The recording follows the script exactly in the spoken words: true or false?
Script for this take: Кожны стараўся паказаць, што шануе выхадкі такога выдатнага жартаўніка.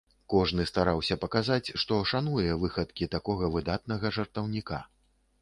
true